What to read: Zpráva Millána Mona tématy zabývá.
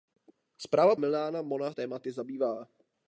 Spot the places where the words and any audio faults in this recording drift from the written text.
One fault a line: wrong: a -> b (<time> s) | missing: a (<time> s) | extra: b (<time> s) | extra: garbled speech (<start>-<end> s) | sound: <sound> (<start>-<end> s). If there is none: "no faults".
no faults